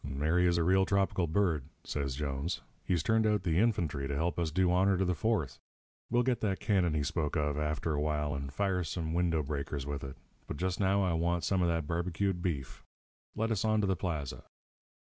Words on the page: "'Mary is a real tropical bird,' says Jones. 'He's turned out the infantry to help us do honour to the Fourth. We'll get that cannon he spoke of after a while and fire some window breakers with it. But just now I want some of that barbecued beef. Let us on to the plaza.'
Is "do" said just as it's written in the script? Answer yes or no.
yes